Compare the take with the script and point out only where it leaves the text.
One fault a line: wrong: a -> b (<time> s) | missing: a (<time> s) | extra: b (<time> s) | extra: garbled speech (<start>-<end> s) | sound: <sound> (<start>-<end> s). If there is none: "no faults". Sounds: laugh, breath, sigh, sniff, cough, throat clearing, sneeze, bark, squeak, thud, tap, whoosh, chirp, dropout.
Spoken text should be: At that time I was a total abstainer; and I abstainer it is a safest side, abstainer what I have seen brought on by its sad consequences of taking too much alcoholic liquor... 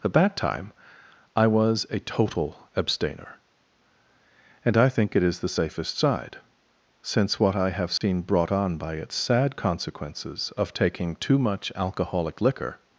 wrong: abstainer -> think (4.9 s)
wrong: a -> the (5.4 s)
wrong: abstainer -> since (7.0 s)
sound: dropout (8.0-8.0 s)